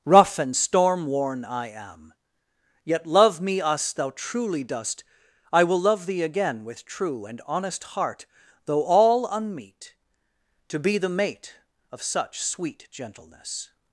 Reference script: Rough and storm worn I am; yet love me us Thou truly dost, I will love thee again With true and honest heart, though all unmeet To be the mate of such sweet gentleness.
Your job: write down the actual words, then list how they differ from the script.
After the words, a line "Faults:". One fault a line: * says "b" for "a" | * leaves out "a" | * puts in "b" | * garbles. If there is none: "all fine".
Rough and storm worn I am; yet love me us Thou truly dost, I will love thee again With true and honest heart, though all unmeet To be the mate of such sweet gentleness.
Faults:
all fine